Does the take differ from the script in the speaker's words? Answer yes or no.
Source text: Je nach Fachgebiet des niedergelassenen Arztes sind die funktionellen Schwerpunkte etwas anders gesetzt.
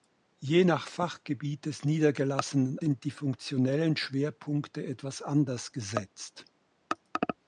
yes